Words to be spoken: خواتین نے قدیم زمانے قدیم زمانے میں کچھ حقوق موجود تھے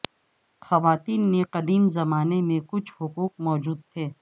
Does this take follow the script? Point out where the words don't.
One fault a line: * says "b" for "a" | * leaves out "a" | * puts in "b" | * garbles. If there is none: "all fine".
* leaves out "قدیم زمانے"